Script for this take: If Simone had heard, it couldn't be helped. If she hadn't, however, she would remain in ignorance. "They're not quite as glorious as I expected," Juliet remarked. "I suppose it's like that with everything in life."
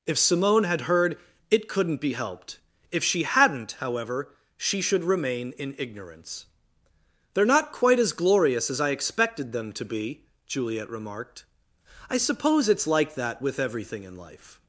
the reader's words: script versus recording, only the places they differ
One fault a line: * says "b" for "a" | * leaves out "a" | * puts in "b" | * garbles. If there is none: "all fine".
* says "should" for "would"
* puts in "them to be"